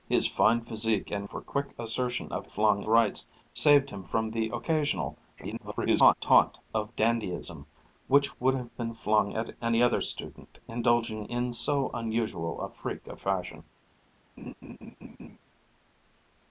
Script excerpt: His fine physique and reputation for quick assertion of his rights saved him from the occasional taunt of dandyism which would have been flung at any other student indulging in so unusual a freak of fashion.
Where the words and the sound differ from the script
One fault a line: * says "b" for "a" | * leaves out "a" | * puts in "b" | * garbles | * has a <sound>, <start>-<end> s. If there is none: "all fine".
* leaves out "reputation"
* says "flung" for "his"
* garbles
* has a laugh, 14.4-15.4 s